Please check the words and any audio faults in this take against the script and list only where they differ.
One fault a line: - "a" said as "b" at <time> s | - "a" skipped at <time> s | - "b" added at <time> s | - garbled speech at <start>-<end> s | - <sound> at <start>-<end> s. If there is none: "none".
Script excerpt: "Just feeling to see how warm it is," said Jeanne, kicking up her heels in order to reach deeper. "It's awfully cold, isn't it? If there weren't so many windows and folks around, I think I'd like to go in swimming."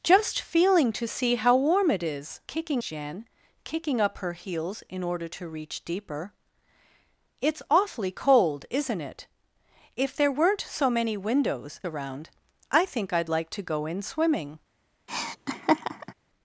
- "said" said as "kicking" at 2.5 s
- "and folks" skipped at 11.8 s
- laugh at 15.1-16.1 s